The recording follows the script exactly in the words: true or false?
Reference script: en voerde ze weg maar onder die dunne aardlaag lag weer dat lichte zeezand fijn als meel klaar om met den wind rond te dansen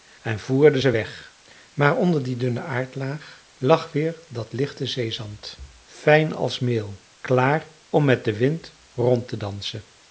true